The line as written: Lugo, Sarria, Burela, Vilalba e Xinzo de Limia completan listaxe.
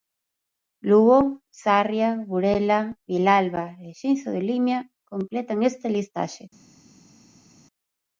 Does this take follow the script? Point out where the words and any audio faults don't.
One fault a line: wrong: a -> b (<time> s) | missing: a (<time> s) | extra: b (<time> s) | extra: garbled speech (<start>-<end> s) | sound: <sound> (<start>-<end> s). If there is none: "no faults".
extra: esta (5.7 s)